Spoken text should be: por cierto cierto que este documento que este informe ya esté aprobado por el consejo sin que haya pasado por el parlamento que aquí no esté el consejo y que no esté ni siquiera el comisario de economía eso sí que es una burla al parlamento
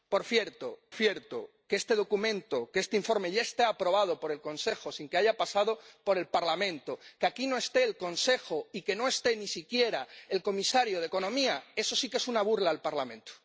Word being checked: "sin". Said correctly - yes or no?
yes